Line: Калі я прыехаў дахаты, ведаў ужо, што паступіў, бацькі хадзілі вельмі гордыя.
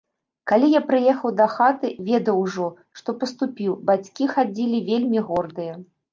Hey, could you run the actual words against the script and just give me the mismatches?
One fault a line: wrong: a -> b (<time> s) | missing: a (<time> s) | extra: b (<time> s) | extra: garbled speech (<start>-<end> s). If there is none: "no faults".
no faults